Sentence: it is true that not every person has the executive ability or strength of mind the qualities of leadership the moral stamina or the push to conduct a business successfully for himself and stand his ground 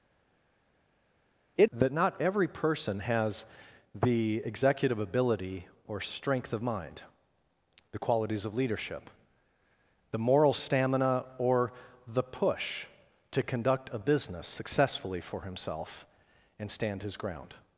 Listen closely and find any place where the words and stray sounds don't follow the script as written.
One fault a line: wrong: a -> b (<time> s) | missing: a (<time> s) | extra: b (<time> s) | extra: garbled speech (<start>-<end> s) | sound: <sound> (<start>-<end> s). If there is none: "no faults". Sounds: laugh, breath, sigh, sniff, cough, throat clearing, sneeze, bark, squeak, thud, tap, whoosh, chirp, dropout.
missing: is true (1.7 s)